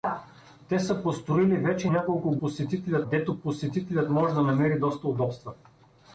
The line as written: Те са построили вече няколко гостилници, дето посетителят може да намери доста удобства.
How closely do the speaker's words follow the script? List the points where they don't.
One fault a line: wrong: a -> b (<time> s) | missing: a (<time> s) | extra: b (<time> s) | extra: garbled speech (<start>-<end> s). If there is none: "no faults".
wrong: гостилници -> посетителят (2.4 s)